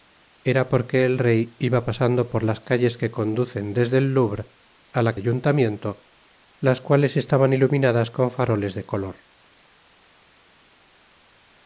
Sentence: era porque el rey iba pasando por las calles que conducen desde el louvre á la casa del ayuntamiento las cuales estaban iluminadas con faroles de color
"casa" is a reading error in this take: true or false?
true